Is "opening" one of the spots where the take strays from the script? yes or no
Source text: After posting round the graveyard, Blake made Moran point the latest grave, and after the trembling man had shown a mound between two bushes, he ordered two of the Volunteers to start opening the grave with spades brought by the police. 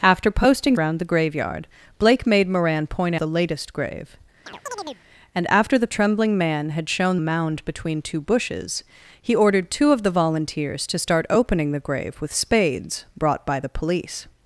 no